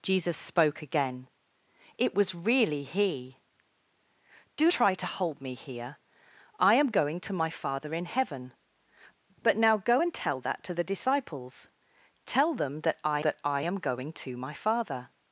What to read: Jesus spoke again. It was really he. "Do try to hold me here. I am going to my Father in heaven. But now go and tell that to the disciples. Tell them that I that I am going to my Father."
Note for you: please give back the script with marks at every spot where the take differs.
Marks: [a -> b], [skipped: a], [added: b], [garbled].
Jesus spoke again. It was really he. "Do try to hold me here. I am going to my Father in heaven. But now go and tell that to the disciples. Tell them that I that I am going to my Father."